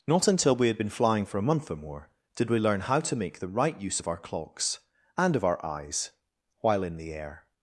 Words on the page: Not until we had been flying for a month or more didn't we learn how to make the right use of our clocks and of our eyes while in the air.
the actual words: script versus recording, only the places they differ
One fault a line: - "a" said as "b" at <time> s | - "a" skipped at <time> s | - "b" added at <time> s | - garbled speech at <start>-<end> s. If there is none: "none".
- "didn't" said as "did" at 2.3 s